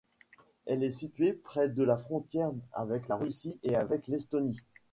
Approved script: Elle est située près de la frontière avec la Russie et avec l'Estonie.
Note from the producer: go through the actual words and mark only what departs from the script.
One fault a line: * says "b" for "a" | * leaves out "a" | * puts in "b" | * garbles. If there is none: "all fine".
all fine